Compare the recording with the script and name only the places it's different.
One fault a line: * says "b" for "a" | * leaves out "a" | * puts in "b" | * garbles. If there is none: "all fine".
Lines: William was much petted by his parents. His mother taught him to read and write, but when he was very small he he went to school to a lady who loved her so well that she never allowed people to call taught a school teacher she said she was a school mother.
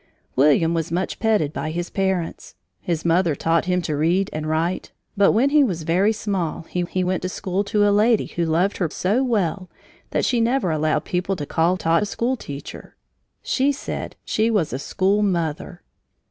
all fine